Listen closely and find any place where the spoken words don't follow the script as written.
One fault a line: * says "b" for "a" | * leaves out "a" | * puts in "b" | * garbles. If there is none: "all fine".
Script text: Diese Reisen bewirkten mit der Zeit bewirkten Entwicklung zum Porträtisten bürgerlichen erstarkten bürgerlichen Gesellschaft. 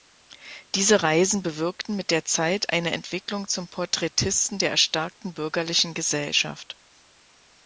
* says "eine" for "bewirkten"
* says "der" for "bürgerlichen"